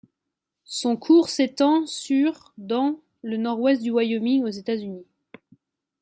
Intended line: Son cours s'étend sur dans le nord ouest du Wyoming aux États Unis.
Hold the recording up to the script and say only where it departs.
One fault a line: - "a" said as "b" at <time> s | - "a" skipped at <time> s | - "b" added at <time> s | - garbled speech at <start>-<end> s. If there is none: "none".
none